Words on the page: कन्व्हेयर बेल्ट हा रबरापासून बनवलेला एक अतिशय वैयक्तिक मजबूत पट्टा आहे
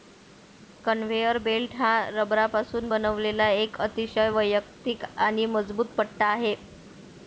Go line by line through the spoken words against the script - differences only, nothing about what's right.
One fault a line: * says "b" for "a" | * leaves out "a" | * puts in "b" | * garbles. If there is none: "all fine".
* puts in "आणि"